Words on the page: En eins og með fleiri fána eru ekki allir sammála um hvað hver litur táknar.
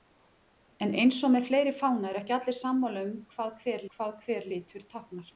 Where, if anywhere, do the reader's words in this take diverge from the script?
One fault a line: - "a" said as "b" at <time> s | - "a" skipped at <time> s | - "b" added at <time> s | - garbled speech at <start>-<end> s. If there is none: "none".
- "hvað hver" added at 4.0 s